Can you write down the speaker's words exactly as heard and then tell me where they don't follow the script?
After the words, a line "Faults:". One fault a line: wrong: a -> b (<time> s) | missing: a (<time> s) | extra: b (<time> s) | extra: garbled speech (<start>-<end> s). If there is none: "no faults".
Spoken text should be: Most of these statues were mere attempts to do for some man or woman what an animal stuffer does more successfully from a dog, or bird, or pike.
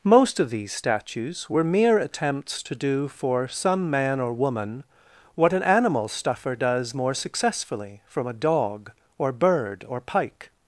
Most of these statues were mere attempts to do for some man or woman what an animal stuffer does more successfully from a dog, or bird, or pike.
Faults:
no faults